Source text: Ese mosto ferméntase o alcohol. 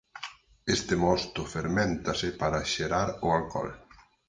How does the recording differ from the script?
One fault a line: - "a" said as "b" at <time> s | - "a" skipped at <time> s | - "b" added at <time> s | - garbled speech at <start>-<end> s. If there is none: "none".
- "Ese" said as "Este" at 0.8 s
- "para xerar" added at 2.4 s